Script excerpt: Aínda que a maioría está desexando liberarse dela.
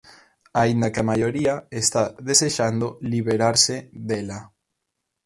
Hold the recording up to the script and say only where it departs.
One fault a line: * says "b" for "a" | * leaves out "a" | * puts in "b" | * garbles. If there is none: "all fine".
all fine